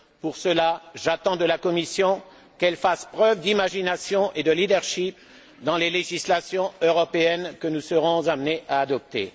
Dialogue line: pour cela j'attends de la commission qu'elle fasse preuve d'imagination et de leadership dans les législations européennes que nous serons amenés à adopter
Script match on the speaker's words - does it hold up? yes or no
yes